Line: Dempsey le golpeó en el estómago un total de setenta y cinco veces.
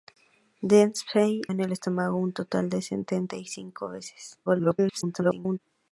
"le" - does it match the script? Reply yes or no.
no